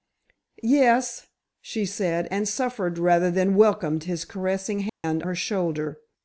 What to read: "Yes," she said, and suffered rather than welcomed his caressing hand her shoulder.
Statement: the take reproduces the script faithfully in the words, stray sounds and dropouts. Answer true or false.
false